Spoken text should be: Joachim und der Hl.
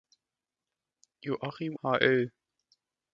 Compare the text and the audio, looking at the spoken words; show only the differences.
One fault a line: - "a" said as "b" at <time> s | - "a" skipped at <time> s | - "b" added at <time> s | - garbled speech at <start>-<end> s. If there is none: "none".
- "und der" skipped at 1.8 s